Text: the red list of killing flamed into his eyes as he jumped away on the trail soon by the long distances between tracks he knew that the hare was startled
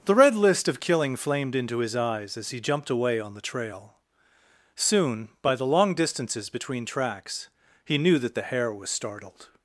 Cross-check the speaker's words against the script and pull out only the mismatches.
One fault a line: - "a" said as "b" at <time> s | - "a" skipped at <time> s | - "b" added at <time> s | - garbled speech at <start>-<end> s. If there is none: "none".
none